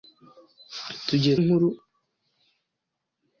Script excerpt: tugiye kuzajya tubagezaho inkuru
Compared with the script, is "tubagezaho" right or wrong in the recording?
wrong